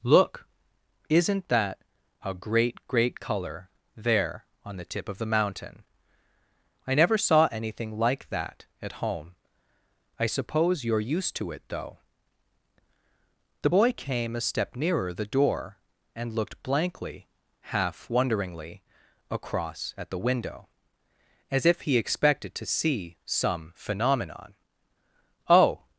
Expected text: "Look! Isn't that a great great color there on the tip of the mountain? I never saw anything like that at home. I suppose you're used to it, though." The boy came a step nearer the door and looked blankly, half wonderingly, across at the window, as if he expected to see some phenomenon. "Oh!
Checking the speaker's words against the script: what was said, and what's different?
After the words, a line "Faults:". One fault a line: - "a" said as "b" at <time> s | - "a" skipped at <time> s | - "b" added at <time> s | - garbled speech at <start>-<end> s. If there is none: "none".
"Look! Isn't that a great great color there on the tip of the mountain? I never saw anything like that at home. I suppose you're used to it, though." The boy came a step nearer the door and looked blankly, half wonderingly, across at the window, as if he expected to see some phenomenon. "Oh!
Faults:
none